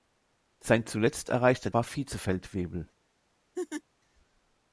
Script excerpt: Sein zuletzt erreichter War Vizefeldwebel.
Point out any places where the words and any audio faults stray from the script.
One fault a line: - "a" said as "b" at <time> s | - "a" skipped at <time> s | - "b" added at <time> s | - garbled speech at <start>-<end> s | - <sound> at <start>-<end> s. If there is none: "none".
- laugh at 3.5-3.8 s